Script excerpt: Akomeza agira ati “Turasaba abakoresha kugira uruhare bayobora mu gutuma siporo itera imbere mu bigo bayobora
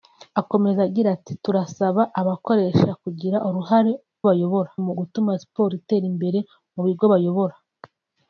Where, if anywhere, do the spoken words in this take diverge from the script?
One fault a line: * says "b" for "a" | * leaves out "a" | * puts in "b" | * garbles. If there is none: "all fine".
all fine